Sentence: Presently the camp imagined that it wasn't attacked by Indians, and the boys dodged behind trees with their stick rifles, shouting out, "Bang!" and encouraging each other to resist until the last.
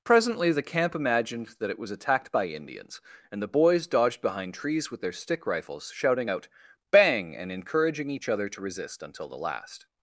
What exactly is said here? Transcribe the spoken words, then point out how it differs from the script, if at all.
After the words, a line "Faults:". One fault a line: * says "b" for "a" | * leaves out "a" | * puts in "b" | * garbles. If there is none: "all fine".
Presently the camp imagined that it was attacked by Indians, and the boys dodged behind trees with their stick rifles, shouting out, "Bang!" and encouraging each other to resist until the last.
Faults:
* says "was" for "wasn't"